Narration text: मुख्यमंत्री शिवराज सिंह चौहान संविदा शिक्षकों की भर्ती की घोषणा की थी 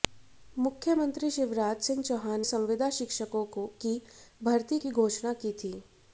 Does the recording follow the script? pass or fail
pass